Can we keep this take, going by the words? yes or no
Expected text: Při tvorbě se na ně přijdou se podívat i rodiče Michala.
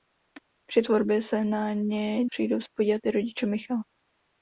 yes